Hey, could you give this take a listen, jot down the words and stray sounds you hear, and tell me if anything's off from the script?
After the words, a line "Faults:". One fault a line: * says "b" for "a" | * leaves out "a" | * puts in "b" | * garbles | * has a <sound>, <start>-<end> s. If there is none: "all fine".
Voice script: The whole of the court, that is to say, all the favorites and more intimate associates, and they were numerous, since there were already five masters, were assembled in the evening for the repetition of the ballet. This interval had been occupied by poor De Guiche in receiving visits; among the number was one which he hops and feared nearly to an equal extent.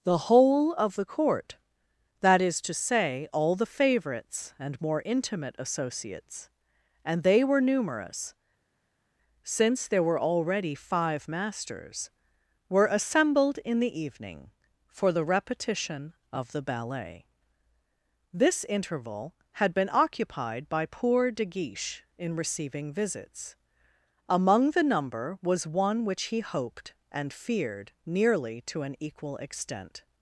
The whole of the court, that is to say, all the favorites and more intimate associates, and they were numerous, since there were already five masters, were assembled in the evening for the repetition of the ballet. This interval had been occupied by poor De Guiche in receiving visits; among the number was one which he hoped and feared nearly to an equal extent.
Faults:
* says "hoped" for "hops"